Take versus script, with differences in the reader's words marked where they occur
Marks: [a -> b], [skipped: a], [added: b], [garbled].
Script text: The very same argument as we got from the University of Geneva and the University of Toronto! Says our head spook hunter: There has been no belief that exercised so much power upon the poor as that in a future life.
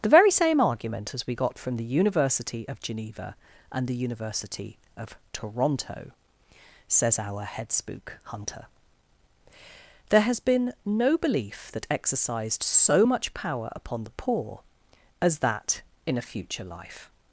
The very same argument as we got from the University of Geneva and the University of Toronto! Says our head spook hunter: There has been no belief that exercised so much power upon the poor as that in a future life.